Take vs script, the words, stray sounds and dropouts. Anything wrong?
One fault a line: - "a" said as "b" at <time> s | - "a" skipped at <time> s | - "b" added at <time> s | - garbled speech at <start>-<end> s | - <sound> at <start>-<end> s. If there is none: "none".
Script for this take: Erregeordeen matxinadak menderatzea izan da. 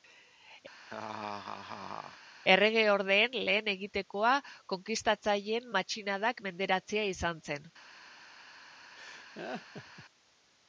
- laugh at 0.8-2.2 s
- "lehen egitekoa konkistatzaileen" added at 3.5 s
- "da" said as "zen" at 7.5 s
- laugh at 9.0-10.1 s